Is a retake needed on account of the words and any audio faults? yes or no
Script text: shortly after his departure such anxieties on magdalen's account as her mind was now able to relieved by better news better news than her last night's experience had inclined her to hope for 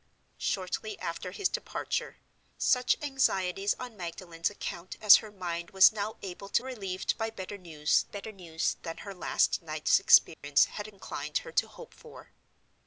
yes